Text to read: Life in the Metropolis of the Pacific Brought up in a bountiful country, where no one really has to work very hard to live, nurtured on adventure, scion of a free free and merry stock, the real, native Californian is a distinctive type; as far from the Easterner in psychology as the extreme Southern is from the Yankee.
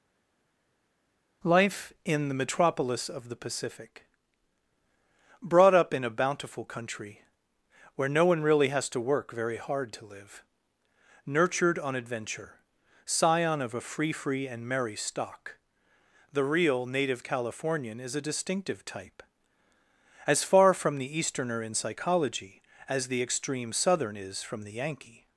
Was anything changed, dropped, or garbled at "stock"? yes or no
no